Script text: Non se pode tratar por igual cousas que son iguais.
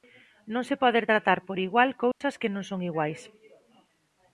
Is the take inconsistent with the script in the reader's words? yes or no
yes